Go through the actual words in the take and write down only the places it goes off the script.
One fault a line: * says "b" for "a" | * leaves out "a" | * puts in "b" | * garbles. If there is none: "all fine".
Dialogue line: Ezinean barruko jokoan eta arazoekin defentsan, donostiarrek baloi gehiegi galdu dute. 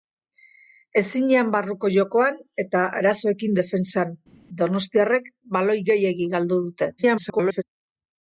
* garbles